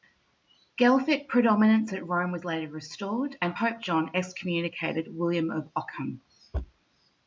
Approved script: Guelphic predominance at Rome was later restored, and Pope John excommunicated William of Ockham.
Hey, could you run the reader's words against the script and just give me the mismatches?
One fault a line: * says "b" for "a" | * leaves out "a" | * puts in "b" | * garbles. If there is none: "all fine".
all fine